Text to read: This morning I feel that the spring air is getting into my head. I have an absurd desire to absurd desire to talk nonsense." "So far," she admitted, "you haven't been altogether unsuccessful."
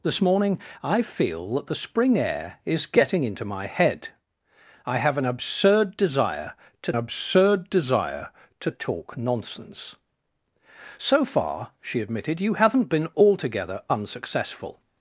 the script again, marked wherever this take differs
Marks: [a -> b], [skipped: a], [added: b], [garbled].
This morning I feel that the spring air is getting into my head. I have an absurd desire to absurd desire to talk nonsense." "So far," she admitted, "you haven't been altogether unsuccessful."